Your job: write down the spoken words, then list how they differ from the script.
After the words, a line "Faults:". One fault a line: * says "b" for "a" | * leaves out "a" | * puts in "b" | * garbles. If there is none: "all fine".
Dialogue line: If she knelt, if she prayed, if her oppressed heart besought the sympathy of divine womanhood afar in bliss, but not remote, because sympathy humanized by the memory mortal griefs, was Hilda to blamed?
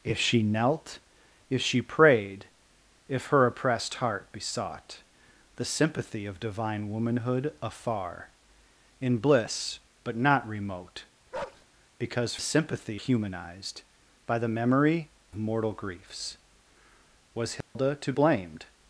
If she knelt, if she prayed, if her oppressed heart besought the sympathy of divine womanhood afar in bliss, but not remote, because sympathy humanized by the memory mortal griefs, was Hilda to blamed?
Faults:
all fine